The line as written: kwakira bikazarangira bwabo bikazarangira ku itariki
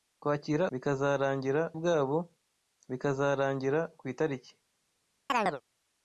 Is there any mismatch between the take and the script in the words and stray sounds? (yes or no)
yes